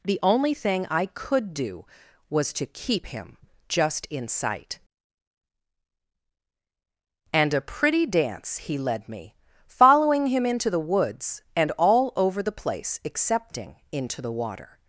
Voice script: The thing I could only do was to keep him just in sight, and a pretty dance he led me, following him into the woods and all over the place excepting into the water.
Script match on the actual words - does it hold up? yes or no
no